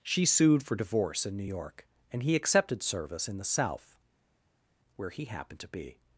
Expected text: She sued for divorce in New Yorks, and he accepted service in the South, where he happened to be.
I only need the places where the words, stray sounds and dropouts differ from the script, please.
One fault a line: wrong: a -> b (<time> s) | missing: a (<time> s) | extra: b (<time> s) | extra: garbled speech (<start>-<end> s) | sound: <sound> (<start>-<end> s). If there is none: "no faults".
wrong: Yorks -> York (1.4 s)